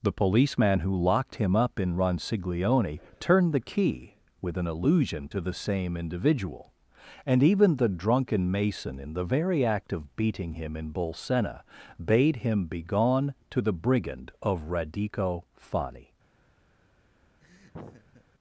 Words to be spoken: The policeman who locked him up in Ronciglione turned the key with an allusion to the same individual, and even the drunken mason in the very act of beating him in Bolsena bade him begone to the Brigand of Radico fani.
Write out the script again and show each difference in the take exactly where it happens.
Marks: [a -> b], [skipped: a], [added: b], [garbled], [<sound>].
The policeman who locked him up in Ronciglione turned the key with an allusion to the same individual, and even the drunken mason in the very act of beating him in Bolsena bade him begone to the Brigand of Radico fani. [laugh]